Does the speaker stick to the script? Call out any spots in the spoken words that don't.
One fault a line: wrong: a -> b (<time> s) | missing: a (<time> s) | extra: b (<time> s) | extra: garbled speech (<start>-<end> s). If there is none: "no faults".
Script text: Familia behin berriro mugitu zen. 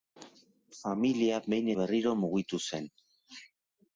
no faults